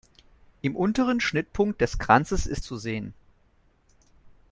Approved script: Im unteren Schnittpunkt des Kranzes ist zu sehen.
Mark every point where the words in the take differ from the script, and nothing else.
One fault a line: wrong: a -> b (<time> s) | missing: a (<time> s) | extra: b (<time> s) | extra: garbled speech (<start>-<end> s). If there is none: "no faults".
no faults